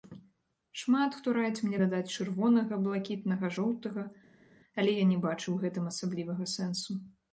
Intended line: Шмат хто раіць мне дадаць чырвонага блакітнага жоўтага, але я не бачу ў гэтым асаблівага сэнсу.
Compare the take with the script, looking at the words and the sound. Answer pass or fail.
pass